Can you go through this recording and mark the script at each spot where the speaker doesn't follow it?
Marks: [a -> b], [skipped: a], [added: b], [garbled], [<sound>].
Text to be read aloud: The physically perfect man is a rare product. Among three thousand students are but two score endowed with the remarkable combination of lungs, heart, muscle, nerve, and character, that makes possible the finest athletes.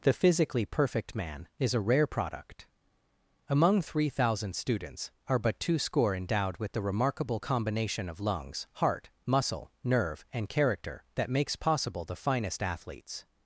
The physically perfect man is a rare product. Among three thousand students are but two score endowed with the remarkable combination of lungs, heart, muscle, nerve, and character, that makes possible the finest athletes.